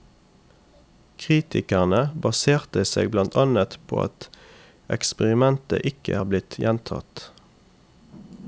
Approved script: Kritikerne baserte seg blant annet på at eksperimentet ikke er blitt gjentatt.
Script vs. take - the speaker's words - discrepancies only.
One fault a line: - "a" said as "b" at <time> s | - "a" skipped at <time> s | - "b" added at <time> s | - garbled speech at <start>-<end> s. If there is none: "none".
none